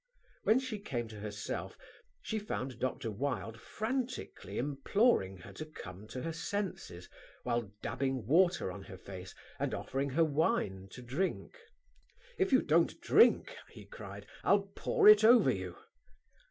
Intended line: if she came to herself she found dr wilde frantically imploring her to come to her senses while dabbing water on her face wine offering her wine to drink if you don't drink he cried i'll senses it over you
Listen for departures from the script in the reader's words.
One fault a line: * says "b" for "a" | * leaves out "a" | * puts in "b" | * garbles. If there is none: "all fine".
* says "when" for "if"
* says "and" for "wine"
* says "pour" for "senses"